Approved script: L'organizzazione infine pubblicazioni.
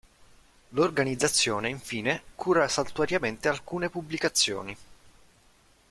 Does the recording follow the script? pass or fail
fail